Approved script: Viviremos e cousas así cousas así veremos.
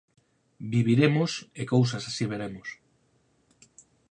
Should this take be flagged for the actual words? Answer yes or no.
yes